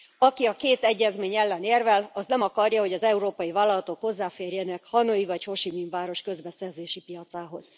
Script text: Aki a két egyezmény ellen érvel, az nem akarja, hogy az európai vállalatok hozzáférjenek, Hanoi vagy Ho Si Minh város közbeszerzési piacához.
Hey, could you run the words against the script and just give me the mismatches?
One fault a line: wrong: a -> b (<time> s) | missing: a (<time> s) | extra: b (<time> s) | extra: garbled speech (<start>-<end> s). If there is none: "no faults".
no faults